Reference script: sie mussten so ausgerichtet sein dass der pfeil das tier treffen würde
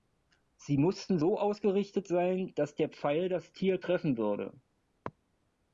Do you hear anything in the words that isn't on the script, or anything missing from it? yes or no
no